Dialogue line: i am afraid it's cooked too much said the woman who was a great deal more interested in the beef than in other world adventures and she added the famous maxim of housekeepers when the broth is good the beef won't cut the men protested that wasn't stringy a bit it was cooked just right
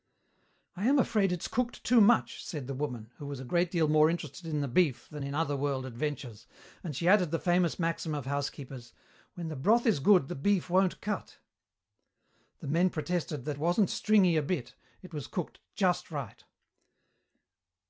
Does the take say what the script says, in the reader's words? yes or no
yes